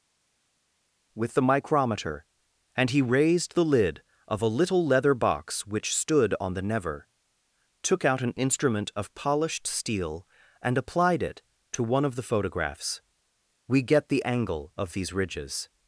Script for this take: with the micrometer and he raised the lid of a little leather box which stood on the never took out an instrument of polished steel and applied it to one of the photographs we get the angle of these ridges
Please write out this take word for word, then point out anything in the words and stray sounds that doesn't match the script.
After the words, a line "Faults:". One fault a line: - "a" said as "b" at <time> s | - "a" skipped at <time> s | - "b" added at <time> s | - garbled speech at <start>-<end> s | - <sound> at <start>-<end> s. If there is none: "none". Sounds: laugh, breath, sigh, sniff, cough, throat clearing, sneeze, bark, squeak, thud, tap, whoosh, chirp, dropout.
with the micrometer and he raised the lid of a little leather box which stood on the never took out an instrument of polished steel and applied it to one of the photographs we get the angle of these ridges
Faults:
none